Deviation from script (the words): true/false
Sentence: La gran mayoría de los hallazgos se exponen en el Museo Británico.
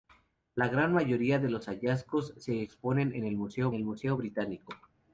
true